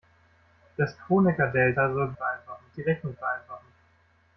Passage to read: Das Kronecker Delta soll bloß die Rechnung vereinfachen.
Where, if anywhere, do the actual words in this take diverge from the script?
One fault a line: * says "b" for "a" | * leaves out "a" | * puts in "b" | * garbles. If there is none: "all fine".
* says "vereinfachen" for "bloß"